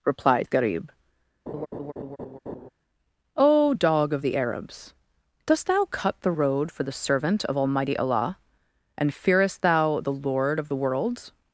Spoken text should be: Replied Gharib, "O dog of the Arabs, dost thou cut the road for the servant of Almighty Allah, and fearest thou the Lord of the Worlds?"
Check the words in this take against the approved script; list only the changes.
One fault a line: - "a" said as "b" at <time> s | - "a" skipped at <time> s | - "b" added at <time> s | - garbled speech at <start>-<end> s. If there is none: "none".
none